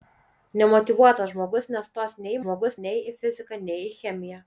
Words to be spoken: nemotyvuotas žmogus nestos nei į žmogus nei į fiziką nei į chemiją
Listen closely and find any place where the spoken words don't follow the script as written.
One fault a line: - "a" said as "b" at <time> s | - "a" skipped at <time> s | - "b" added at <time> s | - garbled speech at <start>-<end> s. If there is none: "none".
none